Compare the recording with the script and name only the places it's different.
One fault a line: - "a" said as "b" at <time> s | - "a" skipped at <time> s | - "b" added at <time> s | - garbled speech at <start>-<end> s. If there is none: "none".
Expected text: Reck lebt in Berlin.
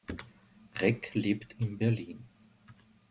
none